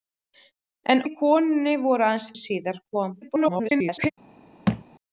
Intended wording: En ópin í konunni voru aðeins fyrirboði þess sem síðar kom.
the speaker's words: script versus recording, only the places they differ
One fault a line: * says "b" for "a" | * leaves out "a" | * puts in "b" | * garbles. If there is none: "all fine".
* leaves out "ópin"
* leaves out "fyrirboði þess sem"
* garbles